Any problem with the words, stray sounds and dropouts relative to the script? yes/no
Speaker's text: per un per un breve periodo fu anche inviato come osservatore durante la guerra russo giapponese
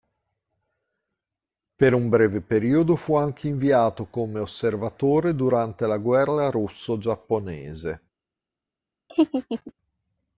yes